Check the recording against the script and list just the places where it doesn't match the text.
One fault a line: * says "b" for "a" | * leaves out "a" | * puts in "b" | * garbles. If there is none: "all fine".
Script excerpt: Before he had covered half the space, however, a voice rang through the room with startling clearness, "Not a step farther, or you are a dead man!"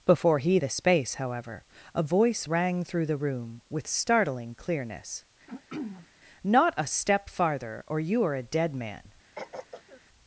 * leaves out "had covered half"